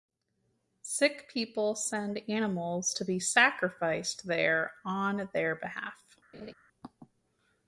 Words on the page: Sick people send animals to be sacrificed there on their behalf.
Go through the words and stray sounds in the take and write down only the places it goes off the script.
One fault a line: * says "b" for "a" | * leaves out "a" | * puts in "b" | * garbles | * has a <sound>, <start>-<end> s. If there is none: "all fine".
* has a laugh, 6.3-6.5 s